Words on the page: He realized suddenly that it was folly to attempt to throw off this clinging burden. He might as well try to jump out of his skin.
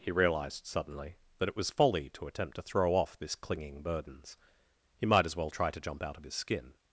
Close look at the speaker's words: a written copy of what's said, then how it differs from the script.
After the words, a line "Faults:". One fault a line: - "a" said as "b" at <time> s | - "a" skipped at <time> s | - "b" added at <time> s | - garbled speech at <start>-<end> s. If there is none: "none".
He realized suddenly that it was folly to attempt to throw off this clinging burdens. He might as well try to jump out of his skin.
Faults:
- "burden" said as "burdens" at 3.8 s